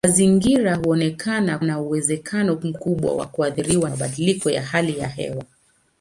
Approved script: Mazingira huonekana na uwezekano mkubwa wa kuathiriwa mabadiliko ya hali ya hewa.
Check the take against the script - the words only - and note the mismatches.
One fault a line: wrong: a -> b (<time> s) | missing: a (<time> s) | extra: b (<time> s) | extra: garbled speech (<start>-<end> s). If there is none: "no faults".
no faults